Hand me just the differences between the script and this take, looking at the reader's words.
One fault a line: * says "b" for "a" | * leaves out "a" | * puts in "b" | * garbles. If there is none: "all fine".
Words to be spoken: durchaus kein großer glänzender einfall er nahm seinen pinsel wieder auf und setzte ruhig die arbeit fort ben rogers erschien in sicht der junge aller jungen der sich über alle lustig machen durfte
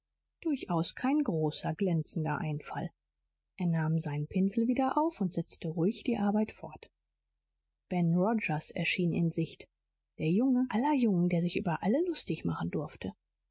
all fine